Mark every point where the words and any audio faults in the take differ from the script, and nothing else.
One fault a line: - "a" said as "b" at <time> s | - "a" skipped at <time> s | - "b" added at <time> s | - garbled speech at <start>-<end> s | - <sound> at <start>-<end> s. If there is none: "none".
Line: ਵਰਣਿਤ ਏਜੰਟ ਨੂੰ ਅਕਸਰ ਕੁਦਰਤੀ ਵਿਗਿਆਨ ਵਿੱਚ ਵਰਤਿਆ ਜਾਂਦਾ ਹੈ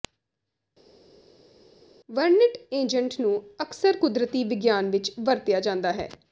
none